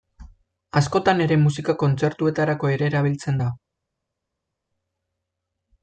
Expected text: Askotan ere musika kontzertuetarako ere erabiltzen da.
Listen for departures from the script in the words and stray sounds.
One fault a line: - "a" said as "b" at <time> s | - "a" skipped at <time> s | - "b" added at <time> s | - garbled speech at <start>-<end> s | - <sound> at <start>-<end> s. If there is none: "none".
none